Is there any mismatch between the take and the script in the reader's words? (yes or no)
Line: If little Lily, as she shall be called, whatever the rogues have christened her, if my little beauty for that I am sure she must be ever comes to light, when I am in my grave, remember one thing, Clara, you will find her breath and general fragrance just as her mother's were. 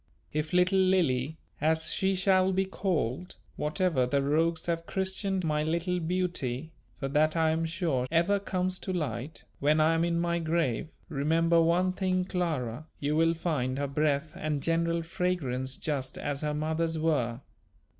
yes